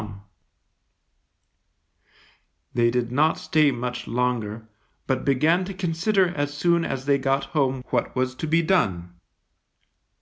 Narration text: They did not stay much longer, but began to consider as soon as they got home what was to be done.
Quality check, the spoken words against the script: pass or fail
pass